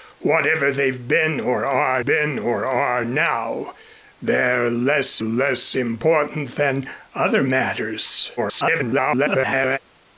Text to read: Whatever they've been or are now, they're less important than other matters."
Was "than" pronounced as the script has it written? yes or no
yes